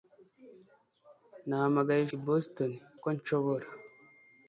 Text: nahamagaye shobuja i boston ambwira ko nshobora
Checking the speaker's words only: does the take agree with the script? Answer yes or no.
no